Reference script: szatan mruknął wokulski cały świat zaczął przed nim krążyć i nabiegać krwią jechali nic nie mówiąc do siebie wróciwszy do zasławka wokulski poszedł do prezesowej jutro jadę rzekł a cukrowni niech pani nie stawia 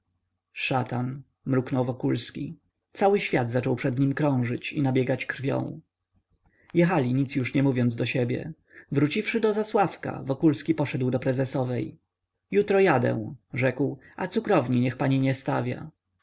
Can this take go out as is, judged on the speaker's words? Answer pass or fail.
fail